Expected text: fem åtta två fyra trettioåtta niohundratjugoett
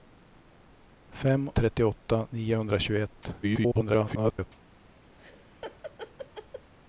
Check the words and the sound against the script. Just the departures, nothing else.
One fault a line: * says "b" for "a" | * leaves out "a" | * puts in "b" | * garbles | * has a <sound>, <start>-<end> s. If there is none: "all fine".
* leaves out "åtta två fyra"
* garbles
* has a laugh, 5.2-6.7 s